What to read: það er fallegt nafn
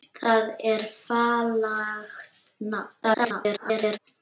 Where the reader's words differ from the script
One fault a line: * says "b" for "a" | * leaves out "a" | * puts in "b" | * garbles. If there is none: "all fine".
* garbles